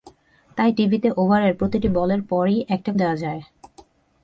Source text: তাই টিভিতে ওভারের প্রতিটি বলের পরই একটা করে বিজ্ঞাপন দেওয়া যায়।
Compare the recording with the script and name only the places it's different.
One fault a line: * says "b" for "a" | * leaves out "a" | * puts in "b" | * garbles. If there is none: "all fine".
* leaves out "করে বিজ্ঞাপন"